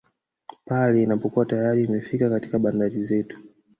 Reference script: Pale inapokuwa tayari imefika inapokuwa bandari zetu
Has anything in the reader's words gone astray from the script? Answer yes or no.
yes